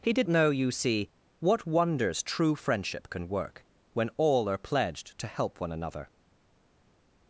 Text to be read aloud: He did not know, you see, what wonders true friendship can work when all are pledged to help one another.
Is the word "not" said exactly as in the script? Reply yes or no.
no